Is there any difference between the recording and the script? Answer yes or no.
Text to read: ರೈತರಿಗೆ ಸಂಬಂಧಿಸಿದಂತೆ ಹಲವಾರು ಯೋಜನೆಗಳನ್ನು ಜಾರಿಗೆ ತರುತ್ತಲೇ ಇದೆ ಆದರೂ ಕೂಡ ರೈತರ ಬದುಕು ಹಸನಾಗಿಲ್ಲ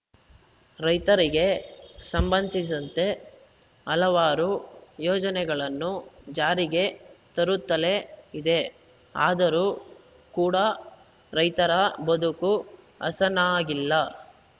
no